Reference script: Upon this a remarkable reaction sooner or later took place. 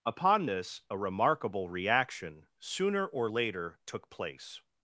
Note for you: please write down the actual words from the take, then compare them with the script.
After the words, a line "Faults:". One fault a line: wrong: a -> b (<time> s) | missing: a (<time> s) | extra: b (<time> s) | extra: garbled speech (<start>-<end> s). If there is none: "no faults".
Upon this a remarkable reaction sooner or later took place.
Faults:
no faults